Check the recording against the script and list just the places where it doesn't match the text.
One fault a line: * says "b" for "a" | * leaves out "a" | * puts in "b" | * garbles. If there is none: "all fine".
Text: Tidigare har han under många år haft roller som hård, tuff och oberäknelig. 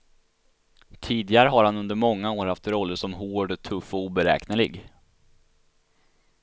all fine